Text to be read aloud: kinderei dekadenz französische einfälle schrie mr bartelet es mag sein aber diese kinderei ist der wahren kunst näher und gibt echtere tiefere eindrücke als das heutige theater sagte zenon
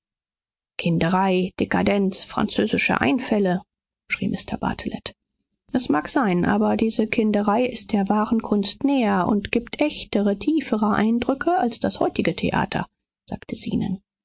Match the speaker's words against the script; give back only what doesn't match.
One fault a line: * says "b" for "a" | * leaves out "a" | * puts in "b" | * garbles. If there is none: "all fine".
all fine